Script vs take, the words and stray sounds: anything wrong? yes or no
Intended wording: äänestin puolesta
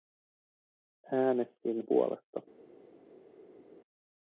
no